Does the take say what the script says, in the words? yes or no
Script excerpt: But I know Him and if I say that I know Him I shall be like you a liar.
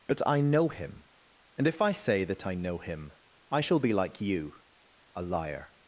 yes